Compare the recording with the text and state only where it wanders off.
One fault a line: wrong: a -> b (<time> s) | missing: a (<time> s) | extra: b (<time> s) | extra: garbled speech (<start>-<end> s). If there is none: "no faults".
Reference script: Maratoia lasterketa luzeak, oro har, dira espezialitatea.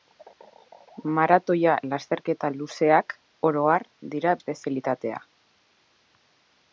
no faults